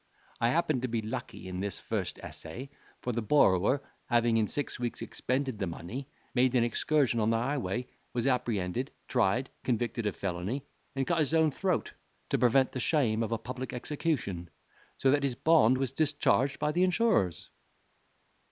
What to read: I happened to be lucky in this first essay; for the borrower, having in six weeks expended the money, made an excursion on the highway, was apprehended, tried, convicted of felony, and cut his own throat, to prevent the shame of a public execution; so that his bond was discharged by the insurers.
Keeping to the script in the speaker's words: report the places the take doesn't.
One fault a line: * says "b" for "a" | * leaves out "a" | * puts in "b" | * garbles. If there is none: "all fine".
all fine